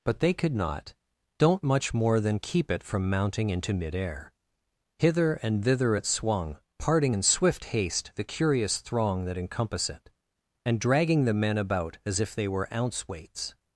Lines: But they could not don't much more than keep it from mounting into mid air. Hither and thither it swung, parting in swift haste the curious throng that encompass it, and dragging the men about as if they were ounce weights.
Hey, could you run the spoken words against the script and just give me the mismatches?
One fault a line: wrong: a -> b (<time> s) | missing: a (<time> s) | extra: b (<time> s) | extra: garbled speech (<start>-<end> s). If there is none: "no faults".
no faults